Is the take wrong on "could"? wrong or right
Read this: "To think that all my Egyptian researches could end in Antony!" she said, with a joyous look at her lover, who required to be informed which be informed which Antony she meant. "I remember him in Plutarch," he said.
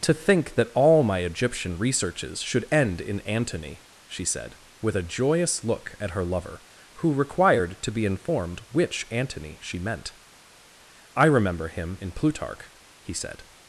wrong